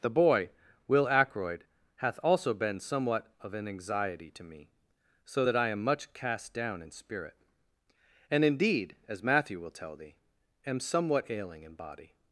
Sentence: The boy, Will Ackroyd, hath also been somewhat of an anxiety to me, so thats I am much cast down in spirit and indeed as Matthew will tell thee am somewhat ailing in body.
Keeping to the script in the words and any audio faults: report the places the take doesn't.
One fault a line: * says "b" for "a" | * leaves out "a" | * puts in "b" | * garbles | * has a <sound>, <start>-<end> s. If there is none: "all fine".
* says "that" for "thats"